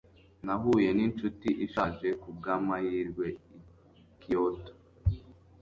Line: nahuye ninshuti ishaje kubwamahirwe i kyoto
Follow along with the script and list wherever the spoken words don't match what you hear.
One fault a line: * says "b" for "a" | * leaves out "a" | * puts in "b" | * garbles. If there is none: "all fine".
all fine